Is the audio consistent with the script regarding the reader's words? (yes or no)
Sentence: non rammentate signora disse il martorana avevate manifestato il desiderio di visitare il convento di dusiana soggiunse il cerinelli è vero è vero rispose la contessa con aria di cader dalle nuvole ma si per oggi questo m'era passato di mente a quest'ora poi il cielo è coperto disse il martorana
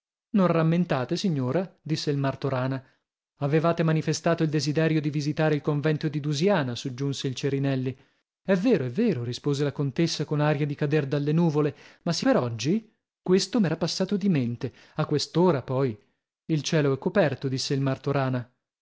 yes